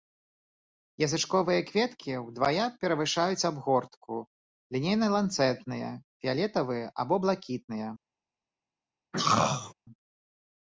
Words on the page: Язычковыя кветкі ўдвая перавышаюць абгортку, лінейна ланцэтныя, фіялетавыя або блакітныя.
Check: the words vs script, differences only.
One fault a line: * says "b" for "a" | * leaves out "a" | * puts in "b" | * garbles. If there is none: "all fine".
all fine